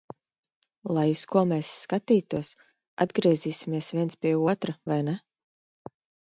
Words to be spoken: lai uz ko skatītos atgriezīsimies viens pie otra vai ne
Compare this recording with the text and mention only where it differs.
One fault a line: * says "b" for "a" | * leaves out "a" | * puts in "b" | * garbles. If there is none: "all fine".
* puts in "mēs"